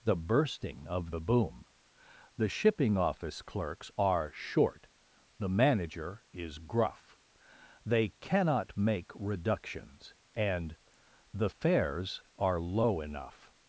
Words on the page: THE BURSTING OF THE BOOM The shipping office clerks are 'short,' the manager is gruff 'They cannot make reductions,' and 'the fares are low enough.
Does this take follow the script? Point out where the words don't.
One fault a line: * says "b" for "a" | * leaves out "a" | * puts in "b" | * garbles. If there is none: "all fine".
all fine